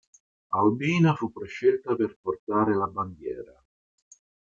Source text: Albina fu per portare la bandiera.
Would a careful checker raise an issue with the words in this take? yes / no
yes